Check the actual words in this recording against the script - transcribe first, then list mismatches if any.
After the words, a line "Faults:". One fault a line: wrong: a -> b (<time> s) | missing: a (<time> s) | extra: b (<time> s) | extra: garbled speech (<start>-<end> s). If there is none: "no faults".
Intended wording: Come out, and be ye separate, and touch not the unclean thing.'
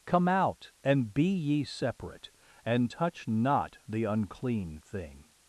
Come out, and be ye separate, and touch not the unclean thing.'
Faults:
no faults